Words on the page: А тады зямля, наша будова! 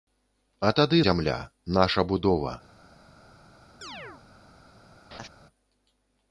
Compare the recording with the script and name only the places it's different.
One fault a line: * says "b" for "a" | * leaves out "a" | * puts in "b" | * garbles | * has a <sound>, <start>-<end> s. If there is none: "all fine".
* has a chirp, 3.8-4.2 s
* has a laugh, 5.1-5.3 s